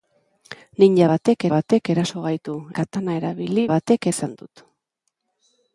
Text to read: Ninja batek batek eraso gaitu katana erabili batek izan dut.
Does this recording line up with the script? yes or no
yes